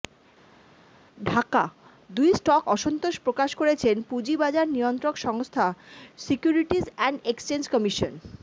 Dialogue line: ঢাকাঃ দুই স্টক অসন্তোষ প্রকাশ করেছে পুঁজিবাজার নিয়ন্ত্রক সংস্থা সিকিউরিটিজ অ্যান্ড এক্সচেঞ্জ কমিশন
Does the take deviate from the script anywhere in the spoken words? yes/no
no